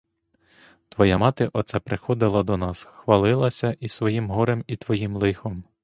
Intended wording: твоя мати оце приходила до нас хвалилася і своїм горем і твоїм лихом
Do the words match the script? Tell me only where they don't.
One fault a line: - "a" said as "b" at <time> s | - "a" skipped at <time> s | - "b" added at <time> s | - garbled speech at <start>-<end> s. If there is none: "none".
none